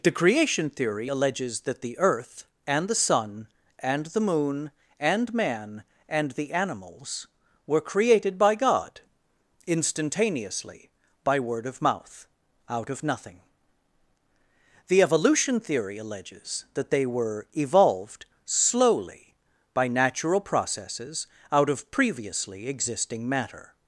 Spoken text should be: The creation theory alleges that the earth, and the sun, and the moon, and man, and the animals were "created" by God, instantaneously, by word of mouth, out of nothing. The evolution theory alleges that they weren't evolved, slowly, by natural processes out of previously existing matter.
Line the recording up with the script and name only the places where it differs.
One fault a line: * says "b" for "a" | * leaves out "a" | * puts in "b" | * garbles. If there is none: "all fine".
* says "were" for "weren't"